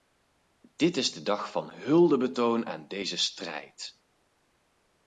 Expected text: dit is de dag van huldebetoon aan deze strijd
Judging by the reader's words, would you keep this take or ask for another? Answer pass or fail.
pass